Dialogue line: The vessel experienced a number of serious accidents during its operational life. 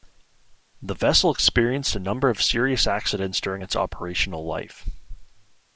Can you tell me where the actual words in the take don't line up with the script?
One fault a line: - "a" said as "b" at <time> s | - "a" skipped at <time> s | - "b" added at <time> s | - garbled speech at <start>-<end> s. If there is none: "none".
none